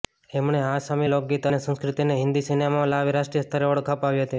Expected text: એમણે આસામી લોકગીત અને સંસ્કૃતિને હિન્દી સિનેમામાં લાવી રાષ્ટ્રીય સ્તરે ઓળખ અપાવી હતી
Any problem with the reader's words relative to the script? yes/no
no